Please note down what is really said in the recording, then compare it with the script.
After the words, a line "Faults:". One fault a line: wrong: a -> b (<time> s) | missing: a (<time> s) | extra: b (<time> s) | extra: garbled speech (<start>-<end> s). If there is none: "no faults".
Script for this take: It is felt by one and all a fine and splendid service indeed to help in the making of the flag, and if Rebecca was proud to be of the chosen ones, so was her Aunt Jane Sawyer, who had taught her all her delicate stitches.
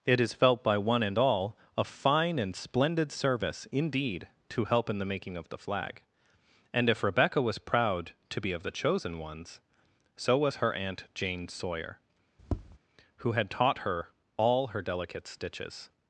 It is felt by one and all a fine and splendid service indeed to help in the making of the flag, and if Rebecca was proud to be of the chosen ones, so was her Aunt Jane Sawyer, who had taught her all her delicate stitches.
Faults:
no faults